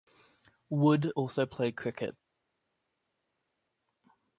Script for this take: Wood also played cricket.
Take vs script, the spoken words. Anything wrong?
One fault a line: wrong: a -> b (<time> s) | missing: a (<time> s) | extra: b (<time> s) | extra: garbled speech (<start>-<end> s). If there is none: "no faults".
no faults